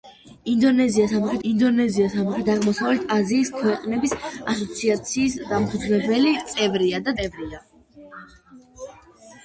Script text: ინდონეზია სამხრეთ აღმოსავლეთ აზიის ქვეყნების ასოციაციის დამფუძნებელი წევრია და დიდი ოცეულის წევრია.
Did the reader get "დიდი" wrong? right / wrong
wrong